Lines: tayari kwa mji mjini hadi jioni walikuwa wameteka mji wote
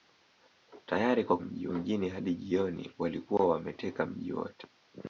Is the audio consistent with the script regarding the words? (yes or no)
yes